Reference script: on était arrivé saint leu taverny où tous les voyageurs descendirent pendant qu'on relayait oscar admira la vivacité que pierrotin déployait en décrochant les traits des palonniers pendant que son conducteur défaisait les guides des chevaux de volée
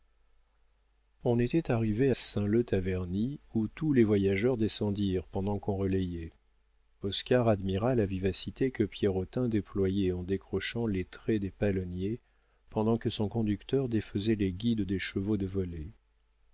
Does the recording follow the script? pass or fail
pass